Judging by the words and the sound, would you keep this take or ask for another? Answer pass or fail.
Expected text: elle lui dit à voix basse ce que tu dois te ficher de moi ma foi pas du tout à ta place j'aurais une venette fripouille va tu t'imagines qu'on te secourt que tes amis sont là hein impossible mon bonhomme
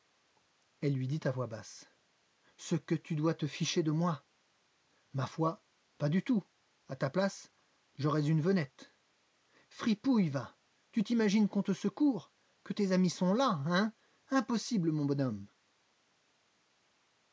pass